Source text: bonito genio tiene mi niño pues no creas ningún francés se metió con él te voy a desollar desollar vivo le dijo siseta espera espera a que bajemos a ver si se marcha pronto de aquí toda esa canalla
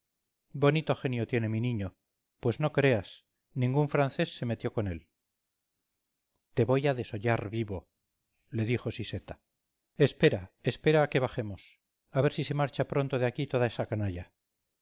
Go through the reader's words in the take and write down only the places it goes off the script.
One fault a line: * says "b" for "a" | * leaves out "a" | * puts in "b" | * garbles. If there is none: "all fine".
* leaves out "desollar"